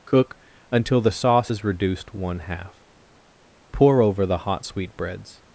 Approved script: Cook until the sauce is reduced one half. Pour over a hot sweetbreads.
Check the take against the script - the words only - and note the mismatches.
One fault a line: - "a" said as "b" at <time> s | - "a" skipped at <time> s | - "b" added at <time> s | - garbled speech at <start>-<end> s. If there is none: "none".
- "a" said as "the" at 4.3 s